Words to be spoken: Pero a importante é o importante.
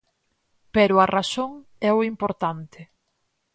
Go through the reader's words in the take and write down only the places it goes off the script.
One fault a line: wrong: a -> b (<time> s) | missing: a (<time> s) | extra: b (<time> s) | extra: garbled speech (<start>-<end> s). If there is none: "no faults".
wrong: importante -> razón (1.2 s)